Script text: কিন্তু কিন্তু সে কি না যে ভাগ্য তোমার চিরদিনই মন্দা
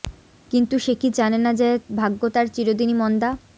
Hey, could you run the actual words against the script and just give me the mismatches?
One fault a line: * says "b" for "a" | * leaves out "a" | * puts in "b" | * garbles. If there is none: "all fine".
* leaves out "কিন্তু"
* puts in "জানে"
* says "তার" for "তোমার"